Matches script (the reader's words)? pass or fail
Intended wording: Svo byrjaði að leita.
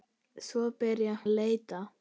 pass